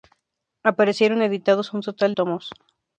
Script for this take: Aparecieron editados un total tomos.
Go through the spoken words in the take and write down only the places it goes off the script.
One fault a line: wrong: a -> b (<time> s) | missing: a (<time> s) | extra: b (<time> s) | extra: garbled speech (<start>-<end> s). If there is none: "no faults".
no faults